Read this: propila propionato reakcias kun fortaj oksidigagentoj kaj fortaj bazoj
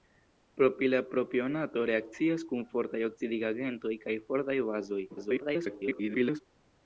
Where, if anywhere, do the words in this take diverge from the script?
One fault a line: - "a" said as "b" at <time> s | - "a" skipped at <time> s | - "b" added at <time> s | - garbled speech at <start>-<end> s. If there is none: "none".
- garbled speech at 5.1-6.4 s